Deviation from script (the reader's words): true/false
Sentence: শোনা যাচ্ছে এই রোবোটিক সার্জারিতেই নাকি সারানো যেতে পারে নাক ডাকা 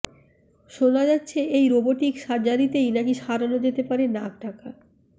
false